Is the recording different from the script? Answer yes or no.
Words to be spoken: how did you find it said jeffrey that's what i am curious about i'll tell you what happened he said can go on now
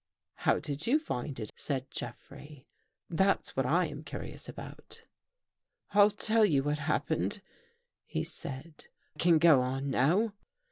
no